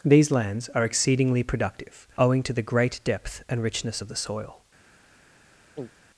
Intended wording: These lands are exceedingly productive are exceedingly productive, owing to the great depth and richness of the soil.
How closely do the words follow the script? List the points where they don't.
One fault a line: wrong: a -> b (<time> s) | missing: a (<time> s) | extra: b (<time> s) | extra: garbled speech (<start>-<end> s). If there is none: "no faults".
missing: are exceedingly productive (2.1 s)